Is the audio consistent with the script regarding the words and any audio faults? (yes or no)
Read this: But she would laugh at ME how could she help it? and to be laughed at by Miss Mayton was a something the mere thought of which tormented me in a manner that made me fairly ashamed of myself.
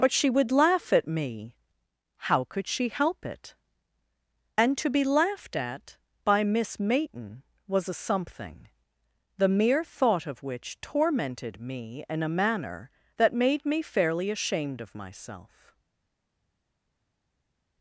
yes